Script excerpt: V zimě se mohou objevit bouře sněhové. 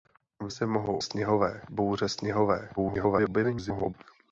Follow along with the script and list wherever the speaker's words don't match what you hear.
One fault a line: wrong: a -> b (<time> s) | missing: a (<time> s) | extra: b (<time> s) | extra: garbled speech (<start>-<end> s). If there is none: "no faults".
missing: zimě (0.5 s)
wrong: objevit -> sněhové (1.0 s)
extra: garbled speech (2.8-3.9 s)